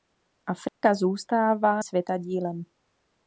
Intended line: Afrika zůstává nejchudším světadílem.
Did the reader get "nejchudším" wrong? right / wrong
wrong